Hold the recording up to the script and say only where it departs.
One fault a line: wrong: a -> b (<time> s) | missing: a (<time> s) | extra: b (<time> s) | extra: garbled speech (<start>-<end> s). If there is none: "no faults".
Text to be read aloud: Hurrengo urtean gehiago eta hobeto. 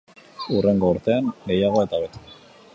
no faults